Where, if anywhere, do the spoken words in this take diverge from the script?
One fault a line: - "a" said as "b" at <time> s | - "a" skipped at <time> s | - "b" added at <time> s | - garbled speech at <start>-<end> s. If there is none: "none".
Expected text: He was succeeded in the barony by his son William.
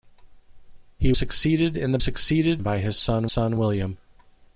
- "was" skipped at 1.1 s
- "barony" said as "succeeded" at 2.0 s
- "son" added at 3.3 s